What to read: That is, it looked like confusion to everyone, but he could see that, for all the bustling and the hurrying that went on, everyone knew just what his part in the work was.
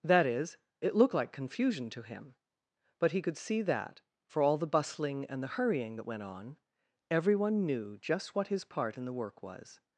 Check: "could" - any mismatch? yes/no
no